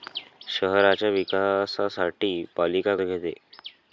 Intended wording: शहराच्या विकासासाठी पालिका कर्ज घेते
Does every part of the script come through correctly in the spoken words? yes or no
no